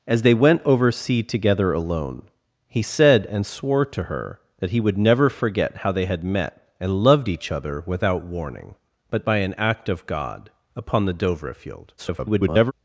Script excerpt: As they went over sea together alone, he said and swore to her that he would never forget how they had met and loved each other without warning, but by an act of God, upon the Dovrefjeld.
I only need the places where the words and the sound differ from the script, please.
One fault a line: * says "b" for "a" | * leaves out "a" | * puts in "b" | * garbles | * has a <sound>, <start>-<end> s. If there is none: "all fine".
* garbles